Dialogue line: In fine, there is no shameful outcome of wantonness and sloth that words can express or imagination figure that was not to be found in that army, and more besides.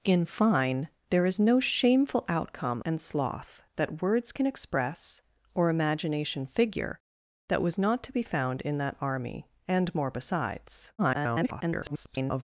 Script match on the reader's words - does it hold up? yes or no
no